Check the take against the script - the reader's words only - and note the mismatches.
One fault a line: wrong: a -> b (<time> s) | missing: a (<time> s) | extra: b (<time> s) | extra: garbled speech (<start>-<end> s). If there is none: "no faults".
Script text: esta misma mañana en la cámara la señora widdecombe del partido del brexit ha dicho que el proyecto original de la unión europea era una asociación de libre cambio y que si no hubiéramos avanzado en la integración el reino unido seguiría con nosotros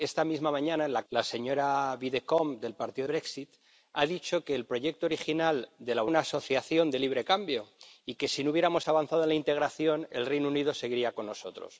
missing: cámara (1.0 s)
missing: del (3.1 s)
missing: unión europea era (6.0 s)